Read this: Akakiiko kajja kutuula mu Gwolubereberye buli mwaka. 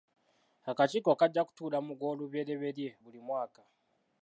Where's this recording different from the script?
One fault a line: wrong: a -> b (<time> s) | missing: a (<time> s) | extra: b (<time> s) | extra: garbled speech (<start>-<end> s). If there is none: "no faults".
no faults